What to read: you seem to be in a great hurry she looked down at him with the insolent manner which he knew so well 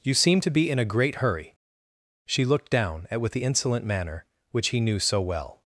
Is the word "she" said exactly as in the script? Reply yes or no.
yes